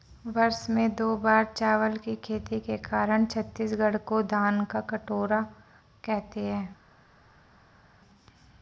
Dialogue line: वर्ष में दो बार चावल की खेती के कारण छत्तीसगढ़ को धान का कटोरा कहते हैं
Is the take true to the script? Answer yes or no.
yes